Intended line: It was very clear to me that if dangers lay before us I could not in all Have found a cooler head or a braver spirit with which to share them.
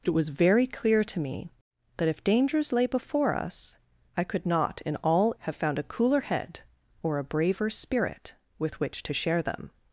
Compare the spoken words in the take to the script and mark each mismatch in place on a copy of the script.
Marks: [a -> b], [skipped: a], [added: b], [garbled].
It was very clear to me that if dangers lay before us I could not in all Have found a cooler head or a braver spirit with which to share them.